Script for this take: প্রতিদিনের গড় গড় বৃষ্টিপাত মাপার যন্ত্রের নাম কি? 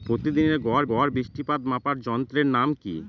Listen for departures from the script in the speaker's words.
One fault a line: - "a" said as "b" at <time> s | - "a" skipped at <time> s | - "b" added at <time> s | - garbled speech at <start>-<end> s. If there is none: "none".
none